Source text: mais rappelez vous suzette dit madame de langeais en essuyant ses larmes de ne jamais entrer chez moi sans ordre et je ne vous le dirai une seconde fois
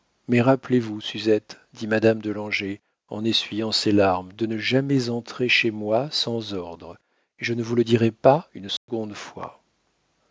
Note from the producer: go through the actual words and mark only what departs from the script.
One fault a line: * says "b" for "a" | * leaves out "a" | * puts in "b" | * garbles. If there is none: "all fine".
* puts in "pas"